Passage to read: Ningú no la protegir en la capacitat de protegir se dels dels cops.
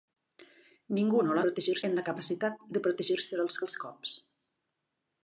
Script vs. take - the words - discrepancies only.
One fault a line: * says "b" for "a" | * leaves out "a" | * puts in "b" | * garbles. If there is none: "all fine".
all fine